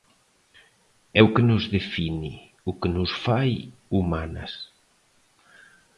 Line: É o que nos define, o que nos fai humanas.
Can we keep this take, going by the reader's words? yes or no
yes